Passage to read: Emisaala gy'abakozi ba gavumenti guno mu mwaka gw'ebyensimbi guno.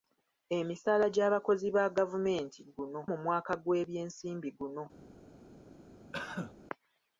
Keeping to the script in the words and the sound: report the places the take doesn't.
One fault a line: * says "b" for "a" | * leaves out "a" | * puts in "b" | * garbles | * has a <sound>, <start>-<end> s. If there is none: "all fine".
* has a cough, 6.1-6.5 s